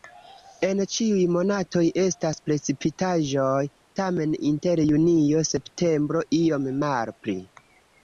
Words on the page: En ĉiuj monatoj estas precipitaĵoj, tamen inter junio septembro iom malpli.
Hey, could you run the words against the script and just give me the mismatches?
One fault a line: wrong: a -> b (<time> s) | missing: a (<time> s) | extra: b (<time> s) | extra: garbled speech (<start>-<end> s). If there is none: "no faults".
no faults